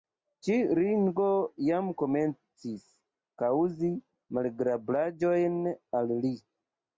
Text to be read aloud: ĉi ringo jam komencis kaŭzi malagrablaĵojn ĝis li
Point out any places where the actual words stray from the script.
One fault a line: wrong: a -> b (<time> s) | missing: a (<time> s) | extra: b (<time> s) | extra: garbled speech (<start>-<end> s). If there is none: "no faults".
wrong: ĝis -> al (6.0 s)